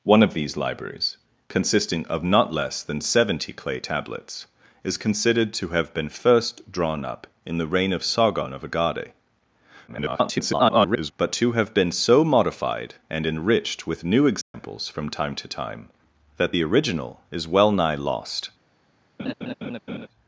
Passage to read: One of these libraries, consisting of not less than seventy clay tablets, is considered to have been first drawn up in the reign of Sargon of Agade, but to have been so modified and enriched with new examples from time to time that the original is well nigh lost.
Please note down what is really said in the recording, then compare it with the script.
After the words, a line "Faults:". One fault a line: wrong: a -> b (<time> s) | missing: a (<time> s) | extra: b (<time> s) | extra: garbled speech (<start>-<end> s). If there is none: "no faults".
One of these libraries, consisting of not less than seventy clay tablets, is considered to have been first drawn up in the reign of Sargon of Agade, [garbled] but to have been so modified and enriched with new examples from time to time that the original is well nigh lost.
Faults:
extra: garbled speech (9.9-11.1 s)